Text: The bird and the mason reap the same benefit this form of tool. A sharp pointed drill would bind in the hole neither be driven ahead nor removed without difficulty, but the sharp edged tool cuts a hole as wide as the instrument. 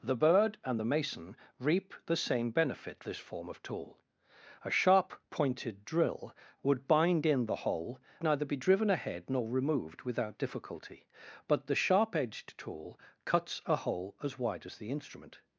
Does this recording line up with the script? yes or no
yes